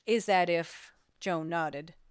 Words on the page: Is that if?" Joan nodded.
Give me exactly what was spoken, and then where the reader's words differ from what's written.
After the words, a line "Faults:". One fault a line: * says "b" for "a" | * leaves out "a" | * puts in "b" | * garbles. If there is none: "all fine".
Is that if?" Joan nodded.
Faults:
all fine